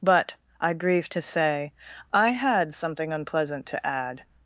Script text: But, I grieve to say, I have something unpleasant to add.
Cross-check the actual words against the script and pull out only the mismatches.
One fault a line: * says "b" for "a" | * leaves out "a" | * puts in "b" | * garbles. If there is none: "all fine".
* says "had" for "have"